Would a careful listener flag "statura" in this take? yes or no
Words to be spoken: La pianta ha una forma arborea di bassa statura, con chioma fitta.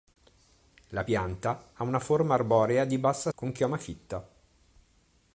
yes